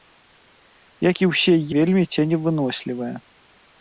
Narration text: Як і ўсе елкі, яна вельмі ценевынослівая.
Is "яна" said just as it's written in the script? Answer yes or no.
no